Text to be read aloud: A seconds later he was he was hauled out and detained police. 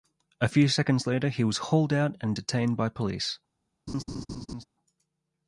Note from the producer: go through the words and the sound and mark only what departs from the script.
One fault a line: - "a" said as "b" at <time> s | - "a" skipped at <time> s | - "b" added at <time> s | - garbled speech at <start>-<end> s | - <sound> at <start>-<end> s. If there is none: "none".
- "few" added at 0.5 s
- "he was" skipped at 1.6 s
- "by" added at 2.8 s
- laugh at 3.9-4.7 s